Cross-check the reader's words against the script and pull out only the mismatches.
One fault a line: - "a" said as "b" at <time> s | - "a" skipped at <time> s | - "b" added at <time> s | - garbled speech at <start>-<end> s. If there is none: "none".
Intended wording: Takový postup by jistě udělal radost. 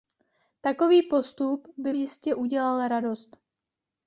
none